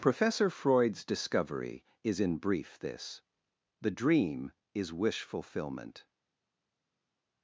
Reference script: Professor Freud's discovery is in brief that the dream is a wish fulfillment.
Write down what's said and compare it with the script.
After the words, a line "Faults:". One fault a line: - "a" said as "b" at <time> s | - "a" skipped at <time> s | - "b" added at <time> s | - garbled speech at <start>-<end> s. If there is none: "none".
Professor Freud's discovery is in brief this the dream is wish fulfillment.
Faults:
- "that" said as "this" at 2.8 s
- "a" skipped at 4.9 s